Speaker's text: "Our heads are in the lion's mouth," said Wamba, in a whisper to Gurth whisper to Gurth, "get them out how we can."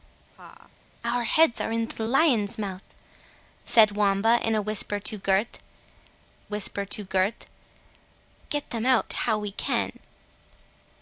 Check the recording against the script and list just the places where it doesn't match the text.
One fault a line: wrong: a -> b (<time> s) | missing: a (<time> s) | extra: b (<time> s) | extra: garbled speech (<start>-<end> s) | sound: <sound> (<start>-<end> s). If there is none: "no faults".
sound: laugh (0.3-0.7 s)